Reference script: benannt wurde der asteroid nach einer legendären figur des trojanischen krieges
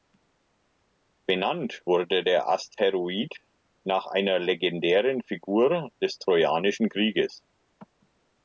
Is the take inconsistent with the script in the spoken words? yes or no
no